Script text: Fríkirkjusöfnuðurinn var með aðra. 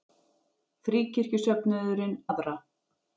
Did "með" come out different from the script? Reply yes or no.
yes